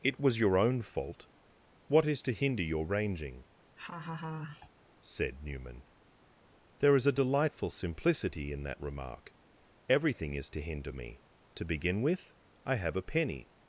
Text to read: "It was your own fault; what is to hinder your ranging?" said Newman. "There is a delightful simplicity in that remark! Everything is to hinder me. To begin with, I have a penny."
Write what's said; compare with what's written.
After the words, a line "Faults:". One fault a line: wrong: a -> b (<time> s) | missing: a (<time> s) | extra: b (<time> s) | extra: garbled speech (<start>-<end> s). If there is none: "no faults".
"It was your own fault; what is to hinder your ranging?" said Newman. "There is a delightful simplicity in that remark! Everything is to hinder me. To begin with, I have a penny."
Faults:
no faults